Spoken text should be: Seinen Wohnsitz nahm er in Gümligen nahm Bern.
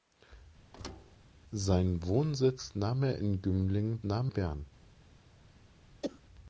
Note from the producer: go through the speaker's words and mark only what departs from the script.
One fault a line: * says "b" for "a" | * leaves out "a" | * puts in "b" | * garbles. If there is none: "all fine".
all fine